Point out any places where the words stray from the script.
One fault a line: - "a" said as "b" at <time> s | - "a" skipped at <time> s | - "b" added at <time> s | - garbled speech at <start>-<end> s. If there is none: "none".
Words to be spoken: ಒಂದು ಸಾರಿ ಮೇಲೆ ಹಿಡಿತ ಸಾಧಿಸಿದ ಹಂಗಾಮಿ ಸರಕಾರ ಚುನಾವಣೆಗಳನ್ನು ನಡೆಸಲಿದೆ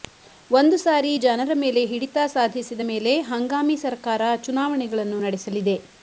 - "ಜನರ" added at 1.2 s
- "ಮೇಲೆ" added at 2.8 s